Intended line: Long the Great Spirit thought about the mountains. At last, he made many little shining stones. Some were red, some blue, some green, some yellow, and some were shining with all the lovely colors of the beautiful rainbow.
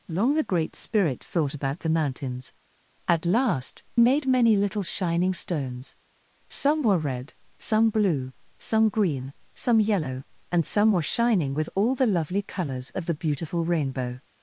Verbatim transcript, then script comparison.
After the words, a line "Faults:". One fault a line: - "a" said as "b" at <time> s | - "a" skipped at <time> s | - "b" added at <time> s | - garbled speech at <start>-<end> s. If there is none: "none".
Long the Great Spirit thought about the mountains. At last, made many little shining stones. Some were red, some blue, some green, some yellow, and some were shining with all the lovely colors of the beautiful rainbow.
Faults:
- "he" skipped at 3.8 s